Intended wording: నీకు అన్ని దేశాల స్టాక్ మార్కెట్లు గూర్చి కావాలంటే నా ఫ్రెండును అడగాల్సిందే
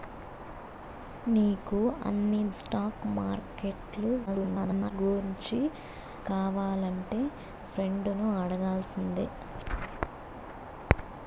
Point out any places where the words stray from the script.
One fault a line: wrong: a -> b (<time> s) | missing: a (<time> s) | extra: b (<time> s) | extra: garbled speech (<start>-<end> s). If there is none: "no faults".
missing: దేశాల (2.4 s)
extra: garbled speech (4.3-4.9 s)
missing: నా (7.2 s)